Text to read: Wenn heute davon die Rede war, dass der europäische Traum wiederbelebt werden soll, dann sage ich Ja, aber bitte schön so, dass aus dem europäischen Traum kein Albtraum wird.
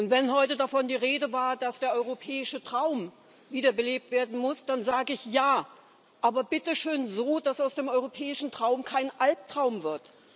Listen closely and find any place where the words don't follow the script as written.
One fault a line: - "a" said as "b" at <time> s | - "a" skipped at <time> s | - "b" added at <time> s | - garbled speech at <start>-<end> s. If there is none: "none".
- "soll" said as "muss" at 4.4 s